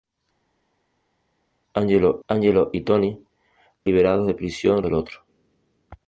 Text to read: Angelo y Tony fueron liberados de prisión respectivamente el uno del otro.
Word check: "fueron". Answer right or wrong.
wrong